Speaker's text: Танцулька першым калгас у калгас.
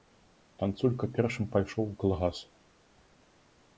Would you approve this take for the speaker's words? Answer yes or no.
no